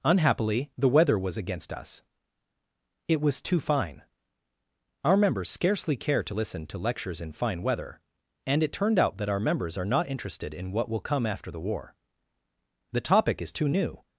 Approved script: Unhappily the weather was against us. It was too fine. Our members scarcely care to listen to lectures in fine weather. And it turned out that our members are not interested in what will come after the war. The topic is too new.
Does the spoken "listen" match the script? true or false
true